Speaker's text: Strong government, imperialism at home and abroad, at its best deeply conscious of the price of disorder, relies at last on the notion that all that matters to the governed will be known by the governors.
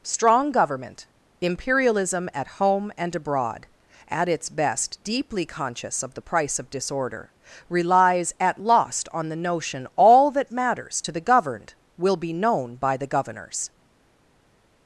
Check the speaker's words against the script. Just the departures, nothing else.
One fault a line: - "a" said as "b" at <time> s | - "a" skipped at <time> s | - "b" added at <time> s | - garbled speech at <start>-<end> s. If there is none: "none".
- "last" said as "lost" at 8.6 s
- "that" skipped at 9.9 s